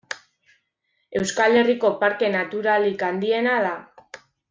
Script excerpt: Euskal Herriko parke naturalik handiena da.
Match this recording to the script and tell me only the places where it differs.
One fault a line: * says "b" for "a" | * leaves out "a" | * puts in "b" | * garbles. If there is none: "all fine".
all fine